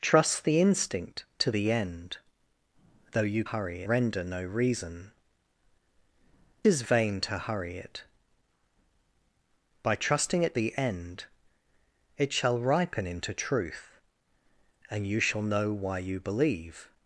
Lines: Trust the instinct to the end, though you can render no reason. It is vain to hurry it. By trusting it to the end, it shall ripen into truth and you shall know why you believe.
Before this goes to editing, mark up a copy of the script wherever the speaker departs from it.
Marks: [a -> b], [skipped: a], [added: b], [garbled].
Trust the instinct to the end, though you [can -> hurry] render no reason. [skipped: It] is vain to hurry it. By trusting it [skipped: to] the end, it shall ripen into truth and you shall know why you believe.